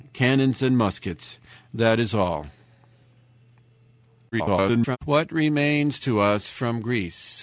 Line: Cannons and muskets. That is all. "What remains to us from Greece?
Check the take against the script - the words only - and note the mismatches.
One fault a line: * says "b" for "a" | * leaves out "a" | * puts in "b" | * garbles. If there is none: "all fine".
* garbles